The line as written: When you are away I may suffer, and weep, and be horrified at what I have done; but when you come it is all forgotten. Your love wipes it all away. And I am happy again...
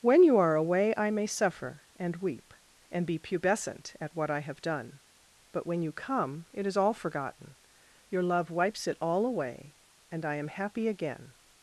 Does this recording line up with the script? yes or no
no